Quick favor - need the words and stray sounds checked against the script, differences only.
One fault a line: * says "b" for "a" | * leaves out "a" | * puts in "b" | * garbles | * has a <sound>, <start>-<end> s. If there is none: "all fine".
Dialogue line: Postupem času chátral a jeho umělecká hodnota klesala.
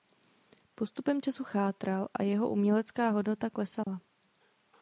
* has a dropout, 3.8-3.9 s